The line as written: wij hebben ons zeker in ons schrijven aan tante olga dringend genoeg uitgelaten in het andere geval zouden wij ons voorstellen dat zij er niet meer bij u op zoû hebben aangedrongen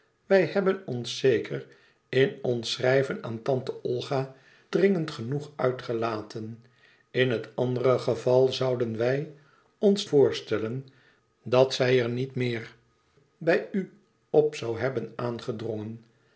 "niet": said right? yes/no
yes